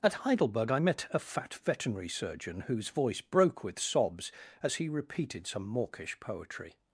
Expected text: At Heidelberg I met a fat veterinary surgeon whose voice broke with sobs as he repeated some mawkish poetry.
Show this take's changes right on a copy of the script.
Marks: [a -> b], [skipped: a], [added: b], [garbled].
At Heidelberg I met a fat veterinary surgeon whose voice broke with sobs as he repeated some mawkish poetry.